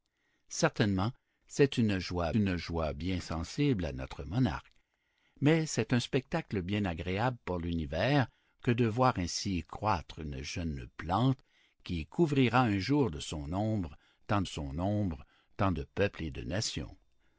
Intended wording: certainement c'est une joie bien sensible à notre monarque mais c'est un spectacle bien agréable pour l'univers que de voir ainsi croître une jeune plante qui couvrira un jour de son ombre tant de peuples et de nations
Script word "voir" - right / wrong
right